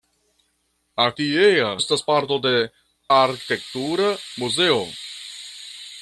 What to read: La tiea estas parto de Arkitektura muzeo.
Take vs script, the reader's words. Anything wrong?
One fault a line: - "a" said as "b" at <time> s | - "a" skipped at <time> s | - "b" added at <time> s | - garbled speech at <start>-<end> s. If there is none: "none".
none